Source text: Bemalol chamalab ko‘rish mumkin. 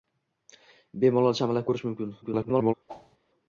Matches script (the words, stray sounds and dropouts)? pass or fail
fail